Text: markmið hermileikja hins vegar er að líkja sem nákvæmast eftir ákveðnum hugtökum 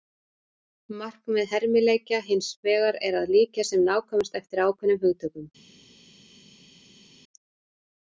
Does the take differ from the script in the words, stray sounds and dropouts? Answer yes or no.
no